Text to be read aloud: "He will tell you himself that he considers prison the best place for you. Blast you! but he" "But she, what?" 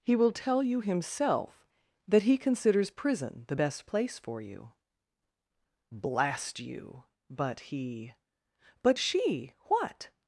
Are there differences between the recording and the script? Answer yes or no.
no